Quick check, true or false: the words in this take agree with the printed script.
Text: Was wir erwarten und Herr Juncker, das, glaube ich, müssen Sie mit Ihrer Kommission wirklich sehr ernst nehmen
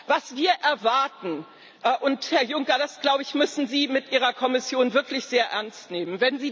true